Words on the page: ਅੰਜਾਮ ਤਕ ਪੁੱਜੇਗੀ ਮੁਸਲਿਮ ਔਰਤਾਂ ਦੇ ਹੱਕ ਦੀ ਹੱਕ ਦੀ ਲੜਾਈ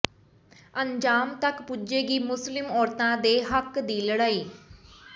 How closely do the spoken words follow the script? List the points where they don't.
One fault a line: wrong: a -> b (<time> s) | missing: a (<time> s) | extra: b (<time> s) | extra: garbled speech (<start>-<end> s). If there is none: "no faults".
missing: ਹੱਕ ਦੀ (4.0 s)